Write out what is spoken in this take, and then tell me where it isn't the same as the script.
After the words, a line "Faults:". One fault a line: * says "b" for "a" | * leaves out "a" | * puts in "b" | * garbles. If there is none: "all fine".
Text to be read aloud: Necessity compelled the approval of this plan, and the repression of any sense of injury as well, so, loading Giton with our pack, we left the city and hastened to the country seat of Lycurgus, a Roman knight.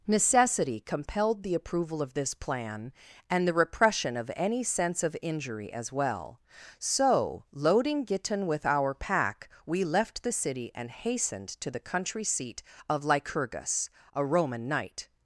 Necessity compelled the approval of this plan, and the repression of any sense of injury as well, so, loading Giton with our pack, we left the city and hastened to the country seat of Lycurgus, a Roman knight.
Faults:
all fine